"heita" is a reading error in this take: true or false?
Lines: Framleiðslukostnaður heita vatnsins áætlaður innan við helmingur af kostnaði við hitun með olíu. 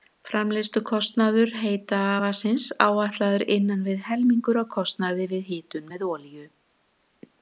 false